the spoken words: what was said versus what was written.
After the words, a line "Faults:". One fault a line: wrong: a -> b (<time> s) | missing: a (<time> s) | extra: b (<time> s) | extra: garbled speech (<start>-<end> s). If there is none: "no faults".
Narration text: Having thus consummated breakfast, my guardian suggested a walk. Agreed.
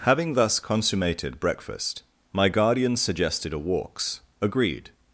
Having thus consummated breakfast, my guardian suggested a walks. Agreed.
Faults:
wrong: walk -> walks (3.6 s)